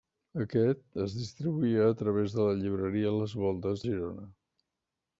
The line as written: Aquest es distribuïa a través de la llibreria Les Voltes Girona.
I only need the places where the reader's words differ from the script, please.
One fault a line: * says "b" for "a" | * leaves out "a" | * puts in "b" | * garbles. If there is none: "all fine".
all fine